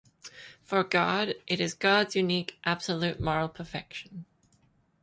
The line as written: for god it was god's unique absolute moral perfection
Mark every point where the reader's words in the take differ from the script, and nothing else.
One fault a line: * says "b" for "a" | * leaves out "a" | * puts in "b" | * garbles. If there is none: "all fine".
* says "is" for "was"